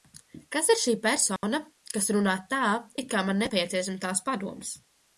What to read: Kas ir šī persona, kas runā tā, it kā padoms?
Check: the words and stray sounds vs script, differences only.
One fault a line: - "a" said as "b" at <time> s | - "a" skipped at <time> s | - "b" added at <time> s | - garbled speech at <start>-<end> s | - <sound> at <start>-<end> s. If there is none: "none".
- dropout at 1.4-1.4 s
- "man nepieciešams tās" added at 3.3 s